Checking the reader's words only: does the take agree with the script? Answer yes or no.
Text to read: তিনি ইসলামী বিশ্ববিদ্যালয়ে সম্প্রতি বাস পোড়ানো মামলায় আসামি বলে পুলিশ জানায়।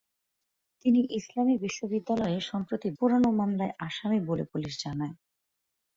no